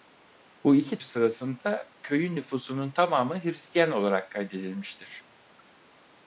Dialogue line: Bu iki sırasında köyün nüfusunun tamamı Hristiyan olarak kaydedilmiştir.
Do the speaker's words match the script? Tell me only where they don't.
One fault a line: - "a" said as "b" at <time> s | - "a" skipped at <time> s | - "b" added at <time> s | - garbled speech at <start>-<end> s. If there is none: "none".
none